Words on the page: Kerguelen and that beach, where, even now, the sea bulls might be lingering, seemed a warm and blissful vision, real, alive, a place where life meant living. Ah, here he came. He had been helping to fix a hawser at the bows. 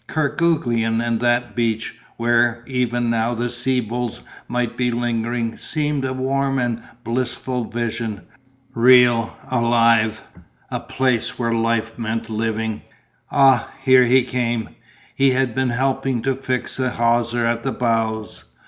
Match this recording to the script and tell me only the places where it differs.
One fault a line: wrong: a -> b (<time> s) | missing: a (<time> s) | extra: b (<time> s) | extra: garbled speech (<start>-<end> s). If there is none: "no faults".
no faults